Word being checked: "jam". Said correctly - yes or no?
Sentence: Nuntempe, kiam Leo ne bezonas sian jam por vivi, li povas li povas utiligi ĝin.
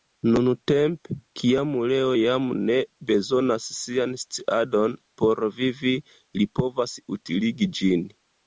no